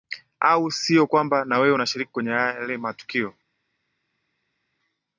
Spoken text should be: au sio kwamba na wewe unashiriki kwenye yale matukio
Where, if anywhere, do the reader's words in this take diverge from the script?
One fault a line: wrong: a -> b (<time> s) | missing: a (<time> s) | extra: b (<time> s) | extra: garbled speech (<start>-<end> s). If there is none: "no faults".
no faults